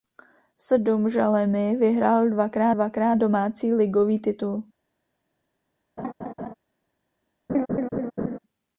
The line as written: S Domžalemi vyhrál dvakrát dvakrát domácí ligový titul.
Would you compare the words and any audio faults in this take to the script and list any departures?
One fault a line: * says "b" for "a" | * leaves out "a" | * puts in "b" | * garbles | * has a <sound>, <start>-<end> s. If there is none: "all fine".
* has a laugh, 6.0-6.5 s
* has a laugh, 7.5-8.4 s